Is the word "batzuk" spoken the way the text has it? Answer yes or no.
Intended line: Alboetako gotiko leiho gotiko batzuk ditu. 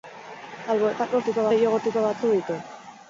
yes